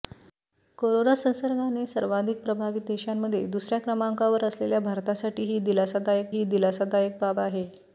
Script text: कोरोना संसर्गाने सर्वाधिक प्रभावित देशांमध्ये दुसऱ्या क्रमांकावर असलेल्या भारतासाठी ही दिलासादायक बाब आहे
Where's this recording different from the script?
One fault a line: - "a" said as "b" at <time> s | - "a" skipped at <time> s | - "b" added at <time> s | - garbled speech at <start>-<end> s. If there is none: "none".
- "ही दिलासादायक" added at 6.3 s